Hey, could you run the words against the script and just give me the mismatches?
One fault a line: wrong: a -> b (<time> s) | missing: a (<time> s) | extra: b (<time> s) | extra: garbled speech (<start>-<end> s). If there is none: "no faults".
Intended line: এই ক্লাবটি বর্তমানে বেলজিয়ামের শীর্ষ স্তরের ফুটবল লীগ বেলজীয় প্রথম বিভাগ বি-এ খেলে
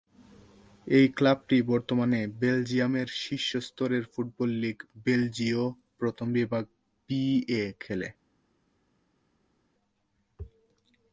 no faults